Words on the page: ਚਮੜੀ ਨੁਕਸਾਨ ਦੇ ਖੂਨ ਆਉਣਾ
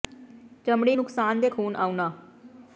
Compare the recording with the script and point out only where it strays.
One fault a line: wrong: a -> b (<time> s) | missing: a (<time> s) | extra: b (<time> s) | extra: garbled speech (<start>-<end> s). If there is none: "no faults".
no faults